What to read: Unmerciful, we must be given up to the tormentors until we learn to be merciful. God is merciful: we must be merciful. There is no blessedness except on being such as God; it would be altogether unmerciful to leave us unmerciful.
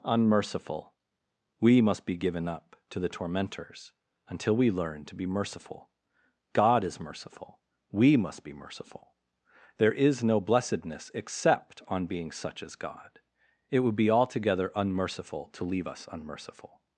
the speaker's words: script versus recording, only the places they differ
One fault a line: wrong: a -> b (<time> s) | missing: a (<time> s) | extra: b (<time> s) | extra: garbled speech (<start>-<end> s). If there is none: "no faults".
no faults